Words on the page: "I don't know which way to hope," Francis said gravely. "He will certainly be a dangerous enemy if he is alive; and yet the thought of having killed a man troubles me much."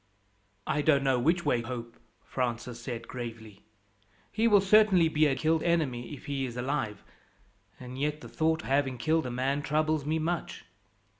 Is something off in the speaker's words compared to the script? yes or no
yes